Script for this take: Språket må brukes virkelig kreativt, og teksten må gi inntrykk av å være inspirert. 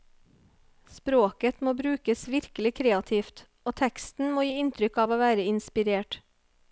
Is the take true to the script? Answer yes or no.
yes